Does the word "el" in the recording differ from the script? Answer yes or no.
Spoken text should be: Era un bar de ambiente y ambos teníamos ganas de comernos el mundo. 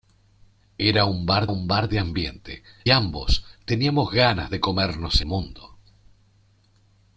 yes